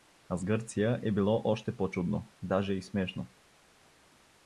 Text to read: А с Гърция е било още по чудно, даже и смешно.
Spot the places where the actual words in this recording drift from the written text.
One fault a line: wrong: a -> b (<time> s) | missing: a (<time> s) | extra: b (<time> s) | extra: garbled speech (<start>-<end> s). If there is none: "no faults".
no faults